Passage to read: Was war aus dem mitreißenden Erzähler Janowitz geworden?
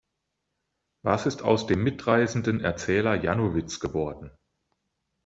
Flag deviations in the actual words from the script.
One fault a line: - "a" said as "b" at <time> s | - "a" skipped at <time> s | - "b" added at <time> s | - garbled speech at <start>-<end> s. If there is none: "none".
- "war" said as "ist" at 1.3 s